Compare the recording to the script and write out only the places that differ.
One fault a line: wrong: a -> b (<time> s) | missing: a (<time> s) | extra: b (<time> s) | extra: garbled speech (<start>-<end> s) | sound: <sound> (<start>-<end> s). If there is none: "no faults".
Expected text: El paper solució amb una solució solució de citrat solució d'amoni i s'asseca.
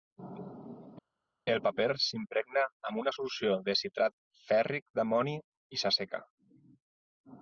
wrong: solució -> s'impregna (2.0 s)
missing: solució (3.5 s)
wrong: solució -> fèrric (4.5 s)